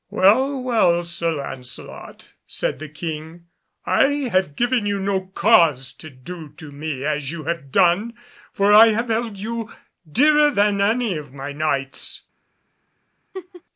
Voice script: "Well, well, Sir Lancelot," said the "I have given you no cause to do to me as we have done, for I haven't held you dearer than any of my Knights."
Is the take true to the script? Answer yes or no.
no